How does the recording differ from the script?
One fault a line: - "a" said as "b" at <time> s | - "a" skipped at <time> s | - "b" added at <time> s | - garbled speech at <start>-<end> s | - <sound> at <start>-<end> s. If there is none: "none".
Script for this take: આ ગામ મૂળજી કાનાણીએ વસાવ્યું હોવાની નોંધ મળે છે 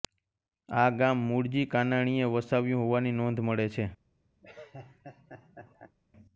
- laugh at 4.4-6.0 s